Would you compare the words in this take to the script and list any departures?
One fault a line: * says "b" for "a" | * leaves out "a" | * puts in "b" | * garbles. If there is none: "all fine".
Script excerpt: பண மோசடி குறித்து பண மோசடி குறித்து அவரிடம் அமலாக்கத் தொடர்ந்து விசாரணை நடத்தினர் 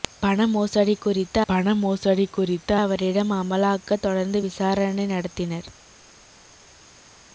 all fine